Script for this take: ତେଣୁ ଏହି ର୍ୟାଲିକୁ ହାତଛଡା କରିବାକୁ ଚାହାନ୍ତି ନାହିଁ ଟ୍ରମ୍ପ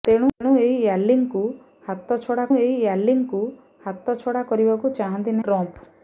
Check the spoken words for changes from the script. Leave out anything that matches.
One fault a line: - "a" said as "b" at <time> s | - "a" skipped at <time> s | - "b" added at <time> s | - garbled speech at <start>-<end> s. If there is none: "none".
- "ଏହି ର୍ୟାଲିକୁ ହାତଛଡା" added at 2.6 s
- "ନାହିଁ" skipped at 5.4 s